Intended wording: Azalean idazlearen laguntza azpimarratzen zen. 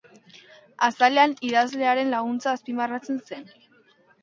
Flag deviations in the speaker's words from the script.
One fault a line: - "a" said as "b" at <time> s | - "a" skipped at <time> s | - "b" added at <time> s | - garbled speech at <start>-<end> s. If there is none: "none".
none